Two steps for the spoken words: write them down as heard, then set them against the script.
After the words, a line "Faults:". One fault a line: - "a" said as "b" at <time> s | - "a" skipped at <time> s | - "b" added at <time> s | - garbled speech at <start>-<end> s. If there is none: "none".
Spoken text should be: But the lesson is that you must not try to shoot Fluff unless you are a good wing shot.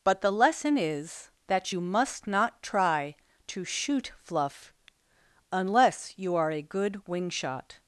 But the lesson is that you must not try to shoot Fluff unless you are a good wing shot.
Faults:
none